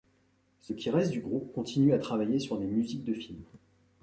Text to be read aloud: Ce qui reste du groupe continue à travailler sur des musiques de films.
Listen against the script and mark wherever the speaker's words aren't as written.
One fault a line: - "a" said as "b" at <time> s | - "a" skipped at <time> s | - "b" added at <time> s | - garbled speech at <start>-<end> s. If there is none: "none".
none